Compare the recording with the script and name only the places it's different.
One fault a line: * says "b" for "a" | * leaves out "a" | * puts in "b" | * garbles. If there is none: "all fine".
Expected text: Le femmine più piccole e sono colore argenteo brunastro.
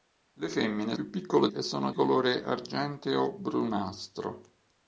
all fine